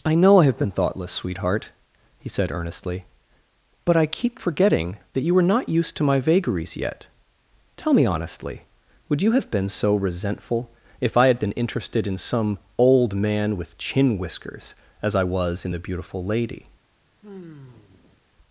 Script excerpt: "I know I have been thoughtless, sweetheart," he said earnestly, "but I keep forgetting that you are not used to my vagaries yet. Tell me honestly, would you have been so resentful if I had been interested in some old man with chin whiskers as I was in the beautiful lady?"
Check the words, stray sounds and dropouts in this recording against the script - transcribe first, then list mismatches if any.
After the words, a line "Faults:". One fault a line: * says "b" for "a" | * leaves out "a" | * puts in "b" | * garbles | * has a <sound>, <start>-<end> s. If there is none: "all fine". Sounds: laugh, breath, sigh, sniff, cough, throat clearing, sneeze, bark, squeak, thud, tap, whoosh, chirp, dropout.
"I know I have been thoughtless, sweetheart," he said earnestly, "but I keep forgetting that you were not used to my vagaries yet. Tell me honestly, would you have been so resentful if I had been interested in some old man with chin whiskers as I was in the beautiful lady?"
Faults:
* says "were" for "are"
* has a sigh, 17.2-18.2 s